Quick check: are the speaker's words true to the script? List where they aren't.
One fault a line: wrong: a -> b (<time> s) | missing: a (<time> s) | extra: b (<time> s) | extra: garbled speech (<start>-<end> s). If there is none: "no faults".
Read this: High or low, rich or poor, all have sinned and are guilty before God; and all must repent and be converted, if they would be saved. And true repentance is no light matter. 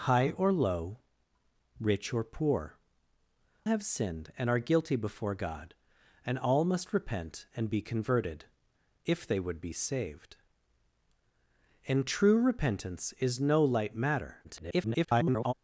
missing: all (2.8 s)
extra: garbled speech (14.4-15.5 s)